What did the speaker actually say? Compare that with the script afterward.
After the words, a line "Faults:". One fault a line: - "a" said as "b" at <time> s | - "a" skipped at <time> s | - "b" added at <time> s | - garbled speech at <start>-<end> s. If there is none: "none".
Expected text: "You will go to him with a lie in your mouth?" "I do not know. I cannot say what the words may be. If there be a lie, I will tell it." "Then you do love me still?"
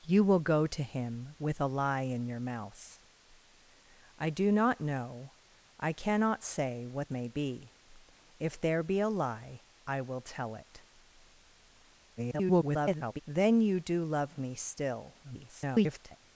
"You will go to him with a lie in your mouth?" "I do not know. I cannot say what may be. If there be a lie, I will tell it." [garbled] "Then you do love me still?" [garbled]
Faults:
- "the words" skipped at 7.1 s
- garbled speech at 12.2-13.2 s
- garbled speech at 15.2-16.2 s